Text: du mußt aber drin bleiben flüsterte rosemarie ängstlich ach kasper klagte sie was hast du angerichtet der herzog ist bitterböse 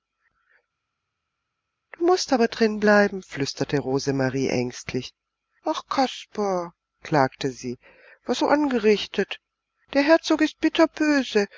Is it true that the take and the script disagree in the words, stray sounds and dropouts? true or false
true